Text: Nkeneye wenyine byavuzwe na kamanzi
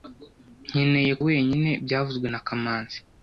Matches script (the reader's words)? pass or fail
pass